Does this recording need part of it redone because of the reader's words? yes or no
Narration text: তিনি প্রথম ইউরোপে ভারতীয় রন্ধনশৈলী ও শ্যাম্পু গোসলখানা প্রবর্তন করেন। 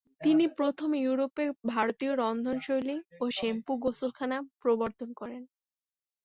no